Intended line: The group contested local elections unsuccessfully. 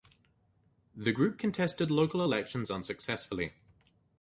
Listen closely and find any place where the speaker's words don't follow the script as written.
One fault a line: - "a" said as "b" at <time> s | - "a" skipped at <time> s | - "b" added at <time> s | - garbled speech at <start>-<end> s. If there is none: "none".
none